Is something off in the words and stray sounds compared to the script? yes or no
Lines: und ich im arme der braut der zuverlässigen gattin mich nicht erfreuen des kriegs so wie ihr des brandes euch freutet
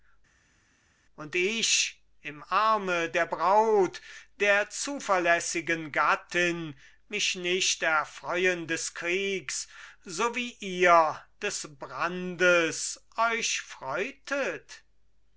no